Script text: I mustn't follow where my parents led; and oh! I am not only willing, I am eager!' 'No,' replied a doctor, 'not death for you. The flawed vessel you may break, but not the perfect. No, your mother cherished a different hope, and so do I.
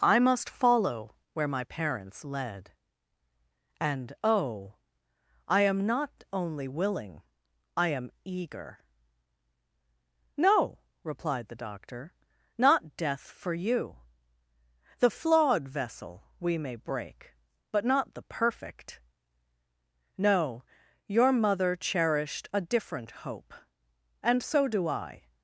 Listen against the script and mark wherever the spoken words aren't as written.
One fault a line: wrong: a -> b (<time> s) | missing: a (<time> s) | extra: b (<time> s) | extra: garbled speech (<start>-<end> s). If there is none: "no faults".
wrong: mustn't -> must (0.2 s)
wrong: a -> the (11.5 s)
wrong: you -> we (16.4 s)